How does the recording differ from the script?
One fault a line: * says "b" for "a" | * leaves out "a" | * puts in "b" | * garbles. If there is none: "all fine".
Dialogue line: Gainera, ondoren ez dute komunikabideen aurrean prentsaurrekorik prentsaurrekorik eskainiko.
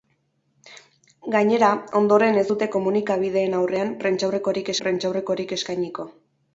all fine